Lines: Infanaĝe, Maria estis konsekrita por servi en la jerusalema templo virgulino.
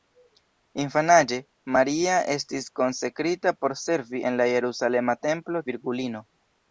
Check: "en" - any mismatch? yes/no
no